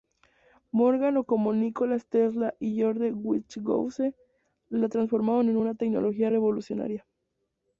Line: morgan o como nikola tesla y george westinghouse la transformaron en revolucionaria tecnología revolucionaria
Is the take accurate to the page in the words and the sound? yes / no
no